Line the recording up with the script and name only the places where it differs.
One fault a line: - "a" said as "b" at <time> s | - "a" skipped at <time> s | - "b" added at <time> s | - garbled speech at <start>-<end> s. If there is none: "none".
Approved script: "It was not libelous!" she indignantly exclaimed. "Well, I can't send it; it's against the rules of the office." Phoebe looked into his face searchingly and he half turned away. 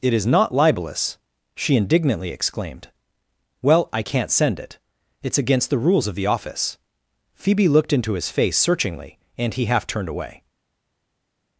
- "was" said as "is" at 0.1 s